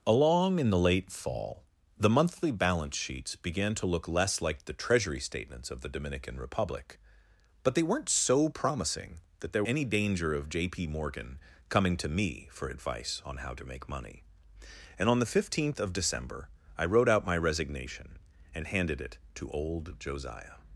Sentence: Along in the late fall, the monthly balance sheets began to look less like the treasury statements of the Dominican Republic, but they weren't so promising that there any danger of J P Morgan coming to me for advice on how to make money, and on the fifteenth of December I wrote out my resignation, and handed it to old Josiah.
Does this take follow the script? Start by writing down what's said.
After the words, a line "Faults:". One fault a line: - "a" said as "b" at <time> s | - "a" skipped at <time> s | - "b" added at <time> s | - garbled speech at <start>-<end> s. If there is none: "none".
Along in the late fall, the monthly balance sheets began to look less like the treasury statements of the Dominican Republic, but they weren't so promising that there any danger of J P Morgan coming to me for advice on how to make money, and on the fifteenth of December I wrote out my resignation, and handed it to old Josiah.
Faults:
none